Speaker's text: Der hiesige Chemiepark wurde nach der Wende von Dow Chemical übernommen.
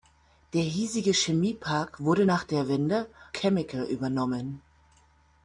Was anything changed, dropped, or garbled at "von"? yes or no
yes